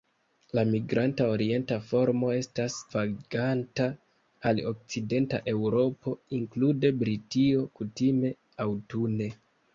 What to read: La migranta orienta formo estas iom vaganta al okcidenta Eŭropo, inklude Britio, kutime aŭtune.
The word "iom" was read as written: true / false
false